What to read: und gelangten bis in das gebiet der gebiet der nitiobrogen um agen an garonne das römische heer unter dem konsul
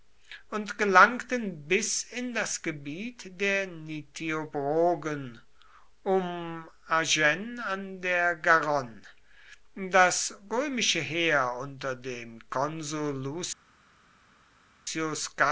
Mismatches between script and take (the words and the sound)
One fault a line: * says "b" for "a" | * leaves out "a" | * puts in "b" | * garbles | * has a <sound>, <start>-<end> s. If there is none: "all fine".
* leaves out "gebiet der"
* puts in "der"